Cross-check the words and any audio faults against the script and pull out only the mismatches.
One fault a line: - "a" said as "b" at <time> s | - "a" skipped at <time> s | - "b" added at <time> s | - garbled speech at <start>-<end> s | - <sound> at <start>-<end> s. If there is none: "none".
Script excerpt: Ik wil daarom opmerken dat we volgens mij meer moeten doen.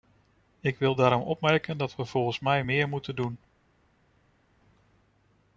none